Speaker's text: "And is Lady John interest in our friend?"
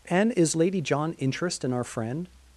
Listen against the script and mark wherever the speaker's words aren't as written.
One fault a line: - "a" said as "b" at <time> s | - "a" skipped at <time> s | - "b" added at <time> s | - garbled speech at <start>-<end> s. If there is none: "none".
none